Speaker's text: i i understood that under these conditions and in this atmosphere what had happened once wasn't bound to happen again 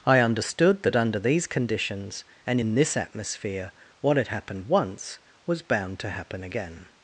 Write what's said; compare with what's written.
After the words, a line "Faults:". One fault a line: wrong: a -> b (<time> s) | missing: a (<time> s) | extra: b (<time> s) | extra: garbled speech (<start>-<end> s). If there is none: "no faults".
i understood that under these conditions and in this atmosphere what had happened once was bound to happen again
Faults:
missing: i (0.2 s)
wrong: wasn't -> was (5.5 s)